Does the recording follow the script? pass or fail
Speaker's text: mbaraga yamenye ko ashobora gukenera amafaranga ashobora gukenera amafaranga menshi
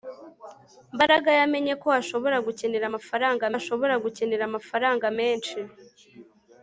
pass